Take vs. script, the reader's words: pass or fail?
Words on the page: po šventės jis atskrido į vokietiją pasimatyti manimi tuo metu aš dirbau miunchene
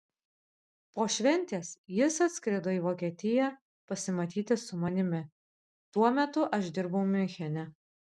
fail